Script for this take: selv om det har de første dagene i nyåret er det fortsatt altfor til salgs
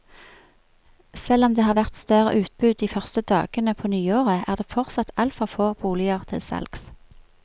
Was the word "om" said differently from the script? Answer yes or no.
no